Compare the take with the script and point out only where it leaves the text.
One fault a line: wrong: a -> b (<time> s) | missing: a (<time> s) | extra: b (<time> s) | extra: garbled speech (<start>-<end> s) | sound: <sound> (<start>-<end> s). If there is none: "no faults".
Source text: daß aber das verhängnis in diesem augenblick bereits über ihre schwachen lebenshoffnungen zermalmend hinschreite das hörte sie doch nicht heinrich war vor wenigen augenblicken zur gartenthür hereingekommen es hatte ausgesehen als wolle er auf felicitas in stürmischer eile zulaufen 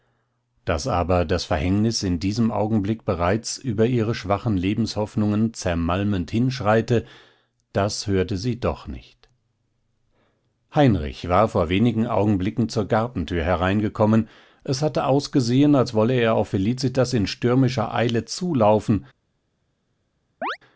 sound: chirp (20.4-20.6 s)